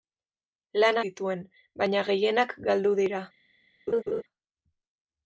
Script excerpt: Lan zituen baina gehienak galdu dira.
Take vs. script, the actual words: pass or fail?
pass